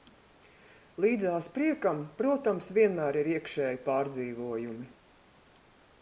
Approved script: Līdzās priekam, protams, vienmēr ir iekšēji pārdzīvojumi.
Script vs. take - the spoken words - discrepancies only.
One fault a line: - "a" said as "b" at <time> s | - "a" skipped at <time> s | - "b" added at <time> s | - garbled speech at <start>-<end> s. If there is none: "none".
none